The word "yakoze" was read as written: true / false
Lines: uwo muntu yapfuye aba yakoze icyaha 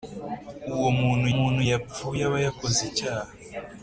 true